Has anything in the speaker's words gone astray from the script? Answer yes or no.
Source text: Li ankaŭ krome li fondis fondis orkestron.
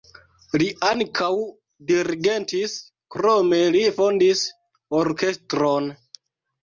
yes